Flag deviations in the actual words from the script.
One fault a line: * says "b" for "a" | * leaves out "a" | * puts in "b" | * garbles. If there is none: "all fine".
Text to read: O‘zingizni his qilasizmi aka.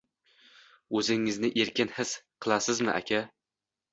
* puts in "erkin"